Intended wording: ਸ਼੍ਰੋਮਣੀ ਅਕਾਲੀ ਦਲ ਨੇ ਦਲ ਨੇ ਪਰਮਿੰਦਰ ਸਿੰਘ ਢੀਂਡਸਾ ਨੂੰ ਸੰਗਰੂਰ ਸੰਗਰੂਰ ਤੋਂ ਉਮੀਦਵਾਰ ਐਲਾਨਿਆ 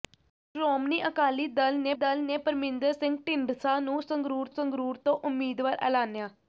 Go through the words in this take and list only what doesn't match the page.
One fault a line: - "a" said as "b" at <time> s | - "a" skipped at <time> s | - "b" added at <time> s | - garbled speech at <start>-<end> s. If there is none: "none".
none